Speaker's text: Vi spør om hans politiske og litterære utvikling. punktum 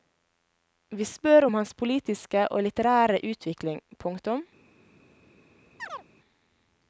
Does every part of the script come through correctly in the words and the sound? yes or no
no